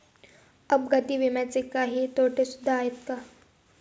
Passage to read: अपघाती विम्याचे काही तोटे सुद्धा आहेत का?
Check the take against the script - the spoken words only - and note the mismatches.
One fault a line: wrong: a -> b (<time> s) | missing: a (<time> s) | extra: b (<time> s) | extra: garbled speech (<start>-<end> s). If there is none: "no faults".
no faults